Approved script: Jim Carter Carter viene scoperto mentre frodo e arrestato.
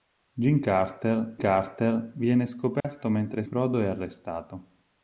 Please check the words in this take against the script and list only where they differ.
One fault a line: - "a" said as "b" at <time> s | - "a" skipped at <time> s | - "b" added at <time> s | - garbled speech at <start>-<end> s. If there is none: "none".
none